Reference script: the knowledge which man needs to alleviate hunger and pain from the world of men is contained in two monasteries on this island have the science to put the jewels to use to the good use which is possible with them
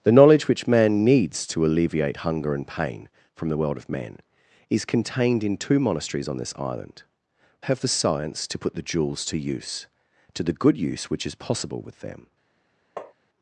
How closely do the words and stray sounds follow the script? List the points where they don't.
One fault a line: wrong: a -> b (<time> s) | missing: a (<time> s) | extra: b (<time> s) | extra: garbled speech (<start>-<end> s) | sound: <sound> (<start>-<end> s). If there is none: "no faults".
sound: tap (13.0-13.1 s)